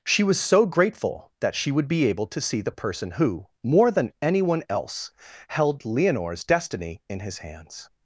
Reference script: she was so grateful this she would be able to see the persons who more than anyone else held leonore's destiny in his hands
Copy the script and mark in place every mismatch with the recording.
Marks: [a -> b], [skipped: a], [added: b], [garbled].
she was so grateful [this -> that] she would be able to see the [persons -> person] who more than anyone else held leonore's destiny in his hands